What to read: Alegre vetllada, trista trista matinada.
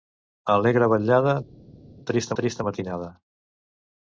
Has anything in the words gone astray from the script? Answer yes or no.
no